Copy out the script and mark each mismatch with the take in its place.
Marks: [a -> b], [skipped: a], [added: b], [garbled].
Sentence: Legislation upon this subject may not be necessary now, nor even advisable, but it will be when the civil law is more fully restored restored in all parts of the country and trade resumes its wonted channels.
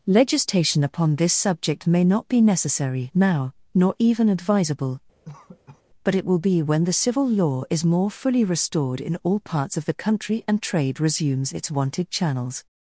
Legislation upon this subject may not be necessary now, nor even advisable, but it will be when the civil law is more fully restored [skipped: restored] in all parts of the country and trade resumes its wonted channels.